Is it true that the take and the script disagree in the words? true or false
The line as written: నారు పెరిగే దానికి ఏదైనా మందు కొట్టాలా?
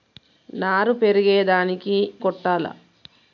true